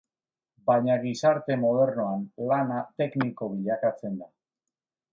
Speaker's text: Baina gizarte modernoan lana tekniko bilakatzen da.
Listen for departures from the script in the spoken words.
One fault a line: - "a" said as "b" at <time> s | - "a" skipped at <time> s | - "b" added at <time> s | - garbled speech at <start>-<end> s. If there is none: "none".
none